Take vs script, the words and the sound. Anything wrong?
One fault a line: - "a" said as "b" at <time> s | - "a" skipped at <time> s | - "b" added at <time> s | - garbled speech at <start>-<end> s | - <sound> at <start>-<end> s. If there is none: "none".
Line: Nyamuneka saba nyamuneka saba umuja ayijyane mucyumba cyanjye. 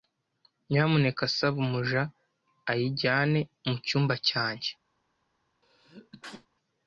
- "nyamuneka saba" skipped at 1.6 s
- sneeze at 5.6-6.5 s